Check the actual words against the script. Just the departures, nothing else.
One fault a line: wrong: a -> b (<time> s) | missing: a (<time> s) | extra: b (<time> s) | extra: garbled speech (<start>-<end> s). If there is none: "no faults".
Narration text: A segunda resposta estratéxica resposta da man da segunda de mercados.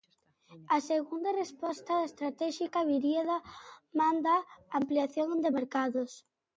wrong: resposta -> viría (2.9 s)
wrong: segunda -> ampliación (4.8 s)